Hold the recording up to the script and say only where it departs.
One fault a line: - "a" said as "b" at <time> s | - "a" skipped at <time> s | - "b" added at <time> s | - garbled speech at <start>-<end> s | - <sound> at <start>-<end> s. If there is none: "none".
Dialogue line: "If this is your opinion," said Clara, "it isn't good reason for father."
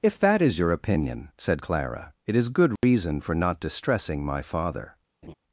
- "this" said as "that" at 0.2 s
- "isn't" said as "is" at 2.3 s
- dropout at 2.8-2.8 s
- "not distressing my" added at 3.3 s
- laugh at 5.2-5.3 s